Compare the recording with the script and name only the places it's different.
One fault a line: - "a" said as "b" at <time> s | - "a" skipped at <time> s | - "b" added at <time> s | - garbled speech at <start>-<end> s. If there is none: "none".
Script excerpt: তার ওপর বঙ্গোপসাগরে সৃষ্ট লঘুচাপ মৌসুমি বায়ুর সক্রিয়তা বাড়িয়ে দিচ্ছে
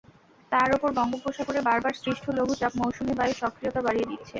- "বারবার" added at 1.7 s